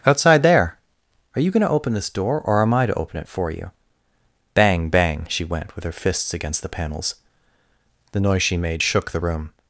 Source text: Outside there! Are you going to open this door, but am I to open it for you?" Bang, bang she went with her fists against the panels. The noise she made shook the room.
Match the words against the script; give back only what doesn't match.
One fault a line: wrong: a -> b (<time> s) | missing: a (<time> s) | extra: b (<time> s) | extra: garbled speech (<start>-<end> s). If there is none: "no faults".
wrong: but -> or (2.4 s)